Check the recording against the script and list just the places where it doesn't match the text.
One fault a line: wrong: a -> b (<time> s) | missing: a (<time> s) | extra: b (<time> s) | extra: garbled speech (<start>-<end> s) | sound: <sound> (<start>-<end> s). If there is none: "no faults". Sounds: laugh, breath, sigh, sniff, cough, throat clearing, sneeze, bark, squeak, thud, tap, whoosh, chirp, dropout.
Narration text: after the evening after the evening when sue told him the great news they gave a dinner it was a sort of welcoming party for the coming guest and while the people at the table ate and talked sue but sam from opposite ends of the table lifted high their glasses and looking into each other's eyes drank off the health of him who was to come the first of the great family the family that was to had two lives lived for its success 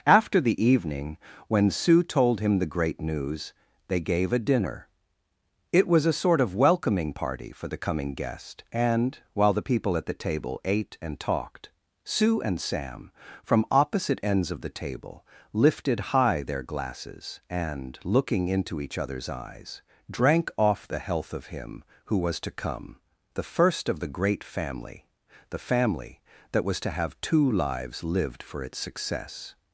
missing: after the evening (1.2 s)
wrong: but -> and (12.4 s)
wrong: had -> have (26.9 s)